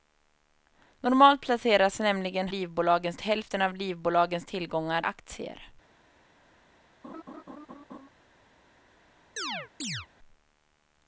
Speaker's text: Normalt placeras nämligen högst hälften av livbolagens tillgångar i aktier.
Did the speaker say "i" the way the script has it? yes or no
no